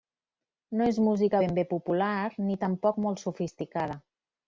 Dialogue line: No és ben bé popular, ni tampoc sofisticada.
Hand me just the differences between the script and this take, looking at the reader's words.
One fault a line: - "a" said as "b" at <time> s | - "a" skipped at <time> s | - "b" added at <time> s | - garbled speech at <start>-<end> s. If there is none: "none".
- "música" added at 1.1 s
- "molt" added at 3.1 s